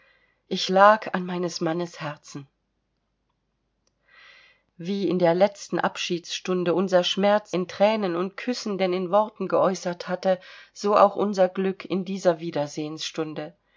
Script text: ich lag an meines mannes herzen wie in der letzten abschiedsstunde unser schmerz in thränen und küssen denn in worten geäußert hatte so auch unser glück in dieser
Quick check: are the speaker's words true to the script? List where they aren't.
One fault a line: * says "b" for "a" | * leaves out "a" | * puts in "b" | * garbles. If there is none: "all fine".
all fine